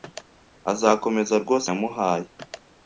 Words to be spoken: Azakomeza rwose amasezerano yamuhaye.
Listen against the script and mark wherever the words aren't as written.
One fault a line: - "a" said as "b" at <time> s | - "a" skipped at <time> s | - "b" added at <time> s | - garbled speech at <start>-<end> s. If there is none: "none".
- "amasezerano" skipped at 1.7 s